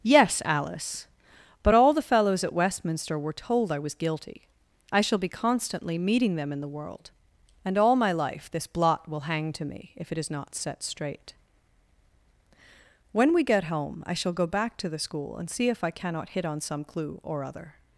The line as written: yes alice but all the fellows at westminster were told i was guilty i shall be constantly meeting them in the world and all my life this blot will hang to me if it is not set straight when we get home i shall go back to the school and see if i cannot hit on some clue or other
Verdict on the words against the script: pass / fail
pass